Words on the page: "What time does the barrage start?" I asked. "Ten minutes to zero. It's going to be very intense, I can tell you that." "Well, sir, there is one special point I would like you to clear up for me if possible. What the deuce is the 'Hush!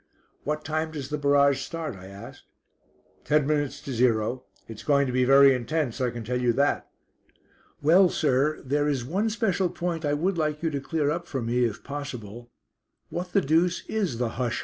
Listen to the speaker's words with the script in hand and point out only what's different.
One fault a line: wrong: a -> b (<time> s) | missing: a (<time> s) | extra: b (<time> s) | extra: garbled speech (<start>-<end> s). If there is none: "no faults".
no faults